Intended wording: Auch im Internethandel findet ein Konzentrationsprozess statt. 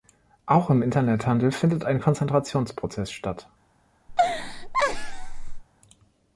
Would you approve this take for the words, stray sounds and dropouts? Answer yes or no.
no